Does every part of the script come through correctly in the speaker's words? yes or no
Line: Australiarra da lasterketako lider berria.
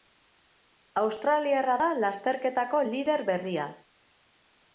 yes